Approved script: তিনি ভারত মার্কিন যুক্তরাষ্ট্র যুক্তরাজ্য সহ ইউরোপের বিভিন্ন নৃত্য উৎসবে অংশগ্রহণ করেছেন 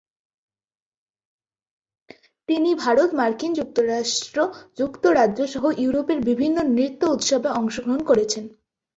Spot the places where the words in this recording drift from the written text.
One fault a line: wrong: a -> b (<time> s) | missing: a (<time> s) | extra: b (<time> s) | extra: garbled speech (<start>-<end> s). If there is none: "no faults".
no faults